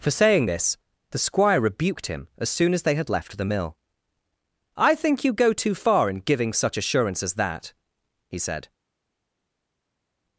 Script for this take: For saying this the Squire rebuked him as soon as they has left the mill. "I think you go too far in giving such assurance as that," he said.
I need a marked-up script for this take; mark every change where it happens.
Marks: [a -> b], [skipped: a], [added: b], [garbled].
For saying this the Squire rebuked him as soon as they [has -> had] left the mill. "I think you go too far in giving such assurance as that," he said.